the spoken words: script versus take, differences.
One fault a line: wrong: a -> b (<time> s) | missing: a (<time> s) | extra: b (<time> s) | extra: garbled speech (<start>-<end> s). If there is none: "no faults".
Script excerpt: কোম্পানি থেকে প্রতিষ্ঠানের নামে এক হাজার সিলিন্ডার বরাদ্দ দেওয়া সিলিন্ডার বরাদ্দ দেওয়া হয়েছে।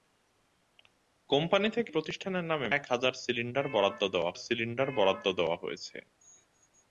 no faults